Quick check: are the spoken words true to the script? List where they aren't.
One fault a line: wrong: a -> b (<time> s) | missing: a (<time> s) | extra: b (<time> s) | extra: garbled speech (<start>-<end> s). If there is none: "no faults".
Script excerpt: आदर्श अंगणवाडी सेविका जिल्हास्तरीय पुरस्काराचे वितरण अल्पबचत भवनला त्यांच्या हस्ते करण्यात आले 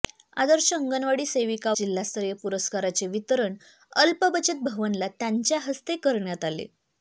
no faults